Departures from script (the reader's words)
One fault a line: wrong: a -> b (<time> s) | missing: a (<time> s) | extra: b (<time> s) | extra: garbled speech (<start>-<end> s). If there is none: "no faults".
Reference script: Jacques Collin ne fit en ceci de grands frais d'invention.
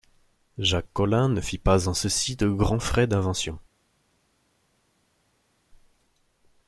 extra: pas (1.6 s)